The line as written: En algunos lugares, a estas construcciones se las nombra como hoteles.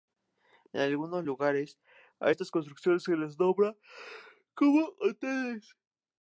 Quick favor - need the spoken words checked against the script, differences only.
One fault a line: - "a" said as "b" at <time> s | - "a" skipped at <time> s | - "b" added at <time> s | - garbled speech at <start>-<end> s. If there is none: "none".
none